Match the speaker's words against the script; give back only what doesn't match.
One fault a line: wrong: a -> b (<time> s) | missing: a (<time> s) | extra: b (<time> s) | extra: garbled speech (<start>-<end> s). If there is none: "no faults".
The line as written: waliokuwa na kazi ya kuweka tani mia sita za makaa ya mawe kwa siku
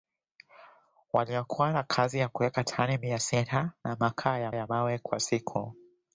extra: ya (4.5 s)